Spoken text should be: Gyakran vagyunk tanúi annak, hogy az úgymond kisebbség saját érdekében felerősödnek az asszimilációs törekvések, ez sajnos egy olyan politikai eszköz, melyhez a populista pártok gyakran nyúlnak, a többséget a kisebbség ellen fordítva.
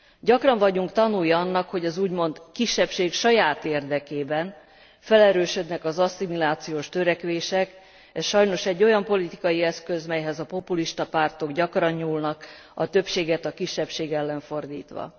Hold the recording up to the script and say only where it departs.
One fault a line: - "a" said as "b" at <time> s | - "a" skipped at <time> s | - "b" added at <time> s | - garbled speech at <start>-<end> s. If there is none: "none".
none